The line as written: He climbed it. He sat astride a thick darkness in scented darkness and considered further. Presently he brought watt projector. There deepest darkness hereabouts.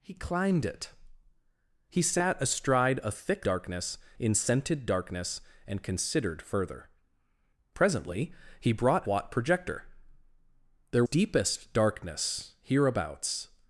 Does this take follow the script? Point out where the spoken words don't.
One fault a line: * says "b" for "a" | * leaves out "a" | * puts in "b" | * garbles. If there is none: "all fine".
all fine